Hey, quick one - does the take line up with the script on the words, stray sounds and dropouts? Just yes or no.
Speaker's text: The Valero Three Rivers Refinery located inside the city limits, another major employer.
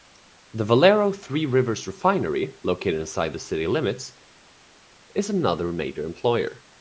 no